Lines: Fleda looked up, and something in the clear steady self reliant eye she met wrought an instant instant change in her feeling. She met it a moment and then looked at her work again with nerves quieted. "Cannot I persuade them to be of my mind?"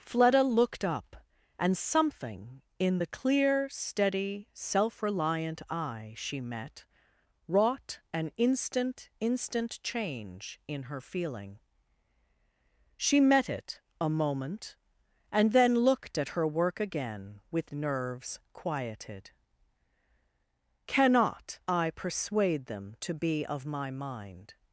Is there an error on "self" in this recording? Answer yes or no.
no